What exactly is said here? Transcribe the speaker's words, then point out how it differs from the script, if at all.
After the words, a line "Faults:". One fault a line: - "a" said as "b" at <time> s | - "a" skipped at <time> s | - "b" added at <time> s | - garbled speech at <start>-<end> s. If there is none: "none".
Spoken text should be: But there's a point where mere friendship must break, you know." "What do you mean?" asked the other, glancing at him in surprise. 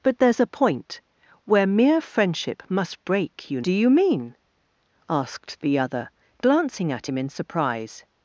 But there's a point where mere friendship must break, you do you mean?" asked the other, glancing at him in surprise.
Faults:
- "know What" skipped at 3.6 s